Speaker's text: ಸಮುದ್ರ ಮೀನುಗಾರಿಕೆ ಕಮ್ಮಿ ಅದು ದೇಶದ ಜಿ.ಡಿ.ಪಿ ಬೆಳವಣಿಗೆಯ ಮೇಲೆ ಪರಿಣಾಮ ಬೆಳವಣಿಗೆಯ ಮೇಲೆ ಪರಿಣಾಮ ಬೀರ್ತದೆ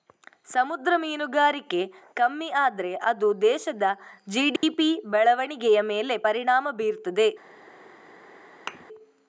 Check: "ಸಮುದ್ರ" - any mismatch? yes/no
no